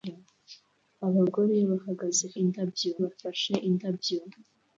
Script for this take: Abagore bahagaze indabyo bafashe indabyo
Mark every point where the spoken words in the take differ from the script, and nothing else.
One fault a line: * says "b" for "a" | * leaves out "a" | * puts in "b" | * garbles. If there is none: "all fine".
all fine